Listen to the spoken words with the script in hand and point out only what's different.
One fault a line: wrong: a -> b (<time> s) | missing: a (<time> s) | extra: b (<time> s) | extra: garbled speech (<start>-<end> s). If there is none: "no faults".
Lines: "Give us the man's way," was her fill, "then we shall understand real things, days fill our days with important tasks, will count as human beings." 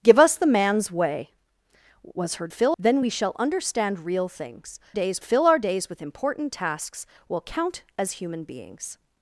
no faults